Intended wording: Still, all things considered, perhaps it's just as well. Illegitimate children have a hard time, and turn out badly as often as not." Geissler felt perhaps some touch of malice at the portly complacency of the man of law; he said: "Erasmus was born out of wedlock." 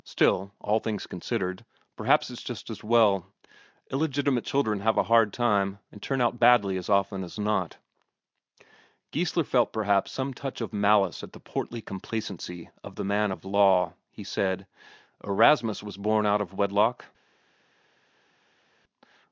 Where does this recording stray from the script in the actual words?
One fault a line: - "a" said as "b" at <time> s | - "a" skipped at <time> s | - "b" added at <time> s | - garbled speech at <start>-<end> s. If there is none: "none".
none